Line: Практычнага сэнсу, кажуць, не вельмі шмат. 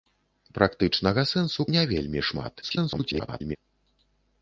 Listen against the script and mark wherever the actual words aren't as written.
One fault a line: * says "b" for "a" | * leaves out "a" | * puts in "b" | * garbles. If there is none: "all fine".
* leaves out "кажуць"
* garbles